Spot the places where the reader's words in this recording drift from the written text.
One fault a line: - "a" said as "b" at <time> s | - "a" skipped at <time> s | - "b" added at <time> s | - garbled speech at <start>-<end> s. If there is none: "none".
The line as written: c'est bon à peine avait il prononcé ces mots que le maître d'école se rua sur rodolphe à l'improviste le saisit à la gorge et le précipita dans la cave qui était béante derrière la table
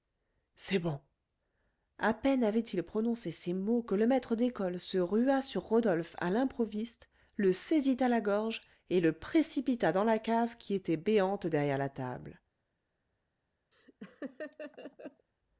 none